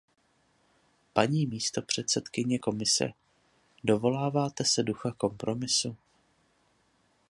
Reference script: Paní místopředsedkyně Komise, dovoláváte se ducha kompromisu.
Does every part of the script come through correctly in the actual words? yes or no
yes